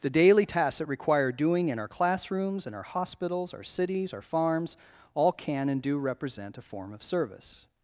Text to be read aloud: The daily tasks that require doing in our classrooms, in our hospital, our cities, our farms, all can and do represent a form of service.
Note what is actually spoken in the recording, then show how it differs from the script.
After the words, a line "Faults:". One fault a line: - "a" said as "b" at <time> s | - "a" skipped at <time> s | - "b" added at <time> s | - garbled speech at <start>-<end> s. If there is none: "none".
The daily tasks that require doing in our classrooms, in our hospitals, our cities, our farms, all can and do represent a form of service.
Faults:
- "hospital" said as "hospitals" at 2.8 s